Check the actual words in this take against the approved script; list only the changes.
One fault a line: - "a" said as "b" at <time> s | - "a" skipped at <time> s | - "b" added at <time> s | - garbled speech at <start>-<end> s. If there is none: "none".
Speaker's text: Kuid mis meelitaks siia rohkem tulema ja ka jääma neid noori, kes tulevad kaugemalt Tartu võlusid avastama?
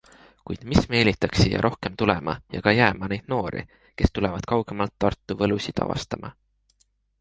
none